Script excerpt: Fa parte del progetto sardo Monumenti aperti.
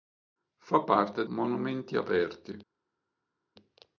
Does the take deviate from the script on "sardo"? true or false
true